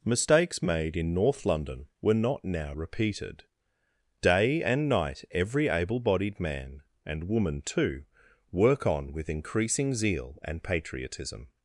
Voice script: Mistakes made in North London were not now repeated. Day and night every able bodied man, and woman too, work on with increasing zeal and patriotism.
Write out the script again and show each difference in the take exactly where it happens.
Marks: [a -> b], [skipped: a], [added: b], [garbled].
Mistakes made in North London were not now repeated. Day and night every able bodied man, and woman too, work on with increasing zeal and patriotism.